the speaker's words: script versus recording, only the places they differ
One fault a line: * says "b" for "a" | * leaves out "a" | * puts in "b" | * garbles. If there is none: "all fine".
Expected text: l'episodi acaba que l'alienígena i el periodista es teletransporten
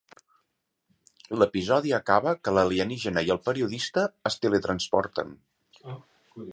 all fine